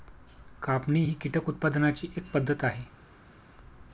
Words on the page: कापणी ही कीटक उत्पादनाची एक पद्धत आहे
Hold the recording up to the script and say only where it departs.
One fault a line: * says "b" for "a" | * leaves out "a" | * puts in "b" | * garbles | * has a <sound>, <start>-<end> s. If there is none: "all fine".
all fine